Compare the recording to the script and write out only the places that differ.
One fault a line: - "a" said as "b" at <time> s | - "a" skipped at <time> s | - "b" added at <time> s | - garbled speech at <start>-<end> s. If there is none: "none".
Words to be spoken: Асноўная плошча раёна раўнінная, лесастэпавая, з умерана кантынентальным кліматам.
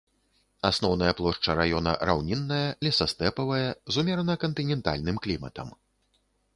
none